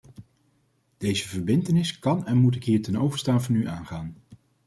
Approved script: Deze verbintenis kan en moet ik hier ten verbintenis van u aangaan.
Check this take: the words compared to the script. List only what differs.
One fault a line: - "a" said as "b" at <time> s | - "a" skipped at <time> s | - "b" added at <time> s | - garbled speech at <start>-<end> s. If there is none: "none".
- "verbintenis" said as "overstaan" at 3.0 s